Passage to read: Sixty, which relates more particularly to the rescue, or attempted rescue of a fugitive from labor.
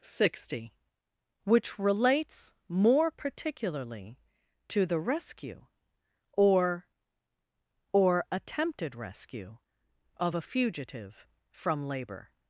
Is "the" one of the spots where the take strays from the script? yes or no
no